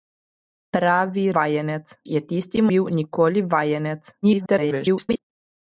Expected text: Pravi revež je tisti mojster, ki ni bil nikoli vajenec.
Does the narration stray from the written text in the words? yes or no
yes